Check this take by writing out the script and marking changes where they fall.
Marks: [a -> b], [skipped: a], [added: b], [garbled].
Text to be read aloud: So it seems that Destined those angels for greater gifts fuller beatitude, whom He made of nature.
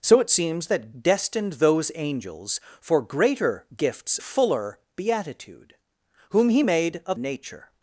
So it seems that Destined those angels for greater gifts fuller beatitude, whom He made of nature.